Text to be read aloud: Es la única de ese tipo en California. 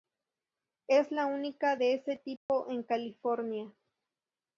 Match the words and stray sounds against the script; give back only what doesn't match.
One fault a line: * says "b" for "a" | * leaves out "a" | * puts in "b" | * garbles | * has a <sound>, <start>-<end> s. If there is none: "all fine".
* has a dropout, 2.4-2.5 s